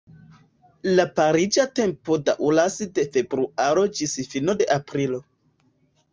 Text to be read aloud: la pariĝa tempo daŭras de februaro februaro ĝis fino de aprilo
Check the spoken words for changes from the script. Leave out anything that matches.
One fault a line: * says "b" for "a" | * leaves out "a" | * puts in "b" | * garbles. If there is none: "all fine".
* leaves out "februaro"